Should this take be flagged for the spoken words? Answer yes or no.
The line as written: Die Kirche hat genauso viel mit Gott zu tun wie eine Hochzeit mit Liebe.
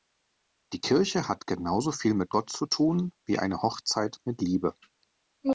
no